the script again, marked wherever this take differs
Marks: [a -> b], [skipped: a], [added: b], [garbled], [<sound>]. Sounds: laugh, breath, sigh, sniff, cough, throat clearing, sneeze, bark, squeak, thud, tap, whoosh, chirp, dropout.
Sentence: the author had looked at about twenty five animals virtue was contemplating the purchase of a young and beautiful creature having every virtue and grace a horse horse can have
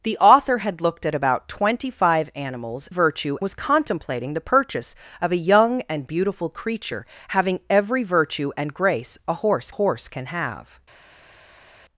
the author had looked at about twenty five animals virtue was contemplating the purchase of a young and beautiful creature having every virtue and grace a horse horse can have